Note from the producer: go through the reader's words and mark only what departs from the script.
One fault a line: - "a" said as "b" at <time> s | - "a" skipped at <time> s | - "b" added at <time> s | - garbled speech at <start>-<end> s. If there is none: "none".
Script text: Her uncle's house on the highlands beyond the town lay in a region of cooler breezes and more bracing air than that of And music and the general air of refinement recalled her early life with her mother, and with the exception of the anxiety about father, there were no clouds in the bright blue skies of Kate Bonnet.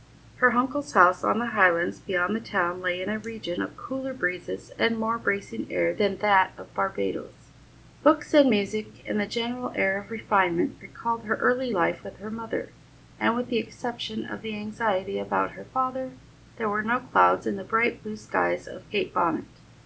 - "Barbadoes Books" added at 6.7 s
- "her" added at 15.5 s